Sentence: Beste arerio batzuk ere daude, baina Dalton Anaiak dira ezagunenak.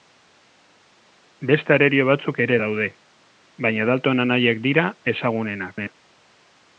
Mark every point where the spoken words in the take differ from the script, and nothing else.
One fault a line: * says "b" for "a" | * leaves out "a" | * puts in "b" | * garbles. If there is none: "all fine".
all fine